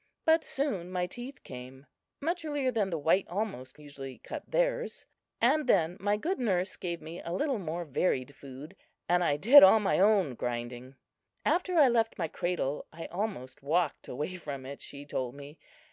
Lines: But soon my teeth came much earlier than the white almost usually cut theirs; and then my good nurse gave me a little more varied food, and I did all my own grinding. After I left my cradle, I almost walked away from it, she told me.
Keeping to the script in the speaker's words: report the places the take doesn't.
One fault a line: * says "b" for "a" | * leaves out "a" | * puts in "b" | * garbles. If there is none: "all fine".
all fine